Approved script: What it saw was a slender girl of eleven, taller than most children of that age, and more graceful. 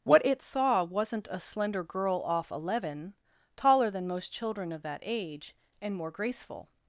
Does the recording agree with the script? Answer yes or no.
no